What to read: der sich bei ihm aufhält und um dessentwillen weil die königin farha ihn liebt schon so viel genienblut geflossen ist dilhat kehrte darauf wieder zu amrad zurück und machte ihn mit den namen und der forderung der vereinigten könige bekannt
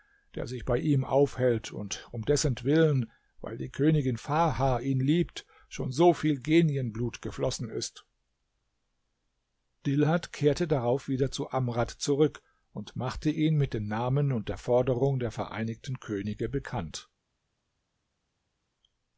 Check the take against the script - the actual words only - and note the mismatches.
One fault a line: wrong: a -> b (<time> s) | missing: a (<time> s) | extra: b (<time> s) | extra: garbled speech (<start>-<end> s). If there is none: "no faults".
no faults